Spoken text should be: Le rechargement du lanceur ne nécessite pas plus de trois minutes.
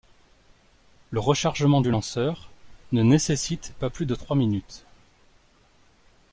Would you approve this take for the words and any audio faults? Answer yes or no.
yes